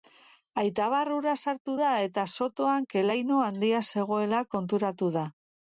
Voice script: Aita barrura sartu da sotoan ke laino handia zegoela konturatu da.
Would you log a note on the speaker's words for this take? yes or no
yes